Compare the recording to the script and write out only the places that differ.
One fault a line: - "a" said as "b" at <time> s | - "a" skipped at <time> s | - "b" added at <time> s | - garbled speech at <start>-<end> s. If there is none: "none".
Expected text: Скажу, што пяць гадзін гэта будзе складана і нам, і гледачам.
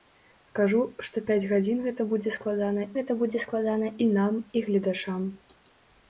- "гэта будзе складана" added at 3.0 s